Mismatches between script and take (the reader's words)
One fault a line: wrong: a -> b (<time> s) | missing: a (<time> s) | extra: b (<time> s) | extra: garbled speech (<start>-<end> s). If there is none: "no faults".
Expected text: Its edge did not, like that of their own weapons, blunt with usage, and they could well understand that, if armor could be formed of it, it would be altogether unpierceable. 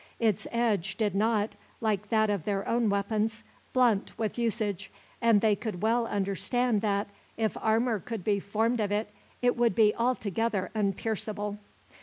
no faults